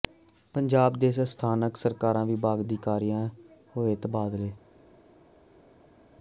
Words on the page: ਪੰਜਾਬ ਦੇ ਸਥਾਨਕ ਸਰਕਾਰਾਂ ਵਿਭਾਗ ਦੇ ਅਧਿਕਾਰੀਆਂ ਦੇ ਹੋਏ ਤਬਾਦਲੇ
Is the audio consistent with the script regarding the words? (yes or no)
no